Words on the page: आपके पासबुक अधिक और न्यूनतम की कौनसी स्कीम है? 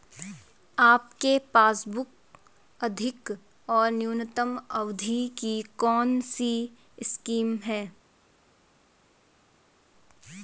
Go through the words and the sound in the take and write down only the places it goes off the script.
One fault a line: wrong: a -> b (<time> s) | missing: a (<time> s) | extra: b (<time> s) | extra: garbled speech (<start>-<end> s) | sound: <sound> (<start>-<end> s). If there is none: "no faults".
extra: अवधि (4.7 s)